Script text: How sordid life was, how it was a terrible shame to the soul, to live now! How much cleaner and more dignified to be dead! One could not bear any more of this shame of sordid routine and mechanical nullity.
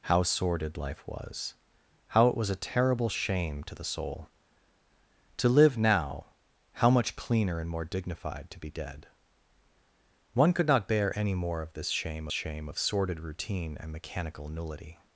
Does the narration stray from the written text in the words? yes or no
yes